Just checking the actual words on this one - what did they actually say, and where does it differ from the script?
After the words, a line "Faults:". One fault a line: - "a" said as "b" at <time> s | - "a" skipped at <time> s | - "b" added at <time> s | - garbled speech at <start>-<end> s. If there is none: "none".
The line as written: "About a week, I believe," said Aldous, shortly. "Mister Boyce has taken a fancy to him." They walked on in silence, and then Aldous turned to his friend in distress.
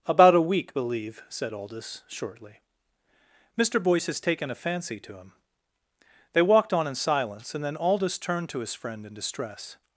"About a week, believe," said Aldous, shortly. "Mister Boyce has taken a fancy to him." They walked on in silence, and then Aldous turned to his friend in distress.
Faults:
- "I" skipped at 0.7 s